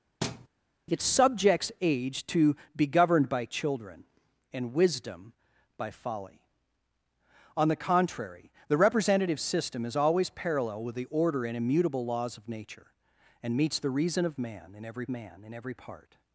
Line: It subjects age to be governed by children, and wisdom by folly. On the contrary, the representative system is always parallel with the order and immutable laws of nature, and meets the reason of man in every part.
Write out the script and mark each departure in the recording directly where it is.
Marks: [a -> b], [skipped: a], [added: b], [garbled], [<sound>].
[thud] It subjects age to be governed by children, and wisdom by folly. On the contrary, the representative system is always parallel with the order and immutable laws of nature, and meets the reason of man in every [added: man in every] part.